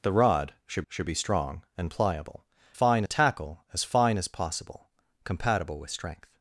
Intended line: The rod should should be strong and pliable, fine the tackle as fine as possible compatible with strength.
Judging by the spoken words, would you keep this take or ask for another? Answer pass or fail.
pass